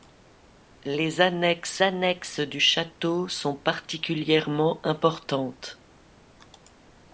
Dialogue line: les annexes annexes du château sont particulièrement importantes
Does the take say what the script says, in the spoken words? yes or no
yes